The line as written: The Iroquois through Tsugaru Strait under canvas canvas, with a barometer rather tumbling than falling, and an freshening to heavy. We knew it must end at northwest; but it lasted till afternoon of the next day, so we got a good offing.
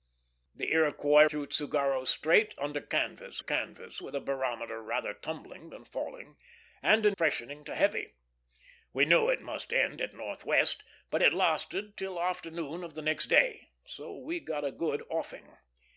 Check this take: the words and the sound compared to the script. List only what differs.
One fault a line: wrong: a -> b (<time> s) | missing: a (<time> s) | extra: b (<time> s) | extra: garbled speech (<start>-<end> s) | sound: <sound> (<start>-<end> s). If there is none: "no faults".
no faults